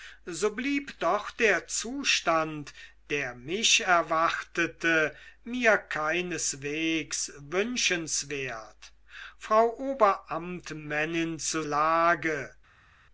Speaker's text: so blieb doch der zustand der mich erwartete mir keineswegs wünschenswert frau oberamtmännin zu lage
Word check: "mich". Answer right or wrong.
right